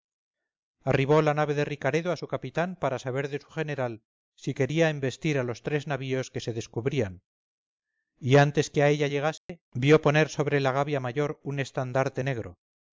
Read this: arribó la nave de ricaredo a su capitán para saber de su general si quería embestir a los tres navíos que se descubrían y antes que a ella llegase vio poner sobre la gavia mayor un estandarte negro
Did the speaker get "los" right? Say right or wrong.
right